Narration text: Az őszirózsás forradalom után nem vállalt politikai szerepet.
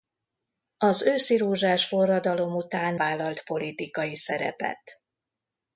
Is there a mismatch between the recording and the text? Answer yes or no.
yes